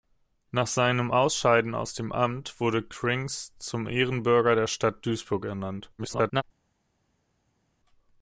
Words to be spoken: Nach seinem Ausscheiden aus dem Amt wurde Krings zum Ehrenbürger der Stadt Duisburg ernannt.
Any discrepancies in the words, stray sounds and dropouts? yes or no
yes